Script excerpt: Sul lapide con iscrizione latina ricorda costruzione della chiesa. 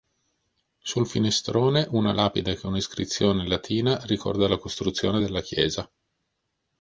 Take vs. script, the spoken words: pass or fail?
fail